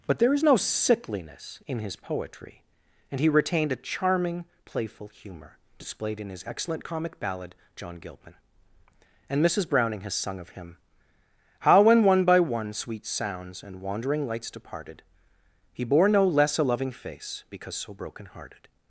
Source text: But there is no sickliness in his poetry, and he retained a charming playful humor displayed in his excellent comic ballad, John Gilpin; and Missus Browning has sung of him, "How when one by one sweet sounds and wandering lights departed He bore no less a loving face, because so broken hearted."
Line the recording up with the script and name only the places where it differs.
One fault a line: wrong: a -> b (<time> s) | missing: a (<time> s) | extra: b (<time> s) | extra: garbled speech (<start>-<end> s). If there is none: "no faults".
no faults